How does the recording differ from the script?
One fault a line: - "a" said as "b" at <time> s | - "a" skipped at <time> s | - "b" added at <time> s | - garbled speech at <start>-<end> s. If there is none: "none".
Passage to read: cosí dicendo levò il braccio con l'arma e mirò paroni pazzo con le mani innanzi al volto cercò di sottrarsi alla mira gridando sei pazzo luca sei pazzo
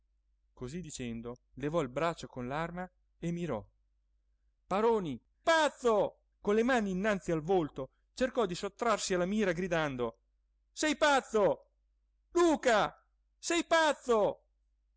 none